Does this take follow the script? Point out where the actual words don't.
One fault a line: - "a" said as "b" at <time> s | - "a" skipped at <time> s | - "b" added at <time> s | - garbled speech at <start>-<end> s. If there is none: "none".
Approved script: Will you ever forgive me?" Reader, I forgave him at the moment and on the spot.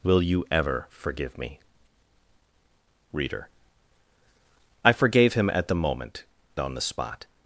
- "and" skipped at 6.2 s